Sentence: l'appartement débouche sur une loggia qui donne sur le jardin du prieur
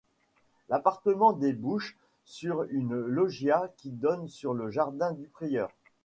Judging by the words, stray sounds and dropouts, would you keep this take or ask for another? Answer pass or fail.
pass